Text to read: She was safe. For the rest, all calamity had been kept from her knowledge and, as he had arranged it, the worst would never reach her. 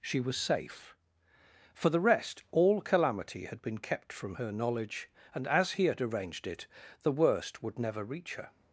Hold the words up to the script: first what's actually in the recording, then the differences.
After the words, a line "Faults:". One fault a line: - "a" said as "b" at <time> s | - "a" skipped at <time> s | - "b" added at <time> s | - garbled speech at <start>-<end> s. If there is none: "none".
She was safe. For the rest, all calamity had been kept from her knowledge and, as he had arranged it, the worst would never reach her.
Faults:
none